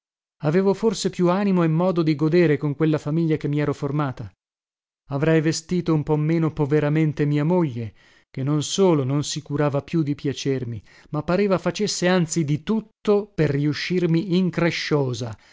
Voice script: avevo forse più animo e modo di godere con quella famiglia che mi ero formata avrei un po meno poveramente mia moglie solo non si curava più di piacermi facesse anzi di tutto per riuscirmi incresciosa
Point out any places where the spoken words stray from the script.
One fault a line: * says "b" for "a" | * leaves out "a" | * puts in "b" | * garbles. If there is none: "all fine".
* puts in "vestito"
* puts in "che non"
* puts in "ma pareva"